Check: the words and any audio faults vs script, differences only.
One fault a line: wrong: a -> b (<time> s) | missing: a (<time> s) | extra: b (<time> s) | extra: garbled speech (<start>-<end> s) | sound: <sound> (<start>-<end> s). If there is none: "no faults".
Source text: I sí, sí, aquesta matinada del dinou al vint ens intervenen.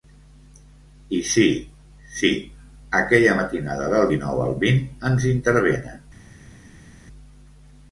wrong: aquesta -> aquella (3.0 s)